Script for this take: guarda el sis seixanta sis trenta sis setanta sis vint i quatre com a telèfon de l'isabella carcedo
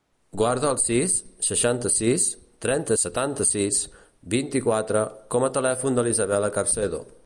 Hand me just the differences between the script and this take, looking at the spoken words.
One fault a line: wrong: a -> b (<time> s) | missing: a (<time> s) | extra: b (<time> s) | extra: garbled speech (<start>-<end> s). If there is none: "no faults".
missing: sis (3.0 s)